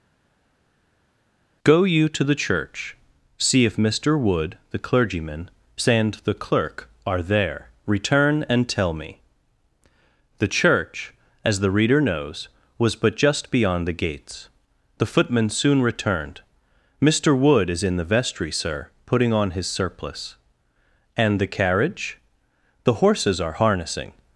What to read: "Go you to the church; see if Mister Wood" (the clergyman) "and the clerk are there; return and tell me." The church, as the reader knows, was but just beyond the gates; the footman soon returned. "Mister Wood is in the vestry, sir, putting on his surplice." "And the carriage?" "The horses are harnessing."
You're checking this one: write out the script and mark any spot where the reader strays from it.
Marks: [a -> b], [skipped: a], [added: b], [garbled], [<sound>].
"Go you to the church; see if Mister Wood" (the clergyman) "and the clerk are there; return and tell me." The church, as the reader knows, was but just beyond the gates; the footman soon returned. "Mister Wood is in the vestry, sir, putting on his surplice." "And the carriage?" "The horses are harnessing."